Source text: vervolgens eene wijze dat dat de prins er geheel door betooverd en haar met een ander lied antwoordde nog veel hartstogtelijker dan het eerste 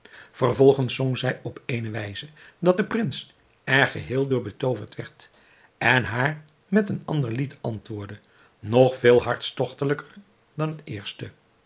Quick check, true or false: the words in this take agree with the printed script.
false